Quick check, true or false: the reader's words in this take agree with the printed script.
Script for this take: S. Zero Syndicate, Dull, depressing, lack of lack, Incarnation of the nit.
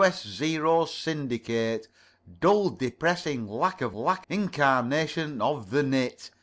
true